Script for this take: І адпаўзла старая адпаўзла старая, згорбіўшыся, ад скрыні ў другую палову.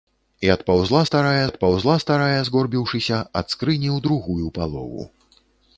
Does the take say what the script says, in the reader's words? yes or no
yes